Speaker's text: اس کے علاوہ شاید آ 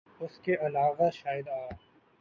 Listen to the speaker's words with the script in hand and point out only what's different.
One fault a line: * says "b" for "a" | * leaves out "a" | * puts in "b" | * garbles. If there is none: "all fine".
all fine